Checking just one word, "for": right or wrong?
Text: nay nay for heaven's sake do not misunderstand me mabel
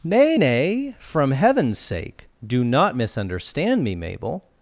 wrong